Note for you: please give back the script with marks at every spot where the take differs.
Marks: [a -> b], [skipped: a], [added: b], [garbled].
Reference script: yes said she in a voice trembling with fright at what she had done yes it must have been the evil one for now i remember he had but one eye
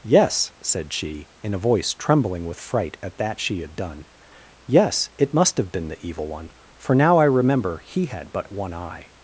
yes said she in a voice trembling with fright at [what -> that] she had done yes it must have been the evil one for now i remember he had but one eye